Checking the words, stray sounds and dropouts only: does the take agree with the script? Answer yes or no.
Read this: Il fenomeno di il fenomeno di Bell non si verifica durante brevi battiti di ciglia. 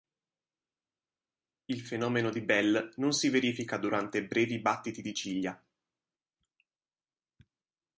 no